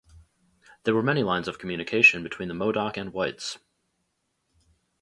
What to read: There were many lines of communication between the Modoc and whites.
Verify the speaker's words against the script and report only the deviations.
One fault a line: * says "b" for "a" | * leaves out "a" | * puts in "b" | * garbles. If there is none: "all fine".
all fine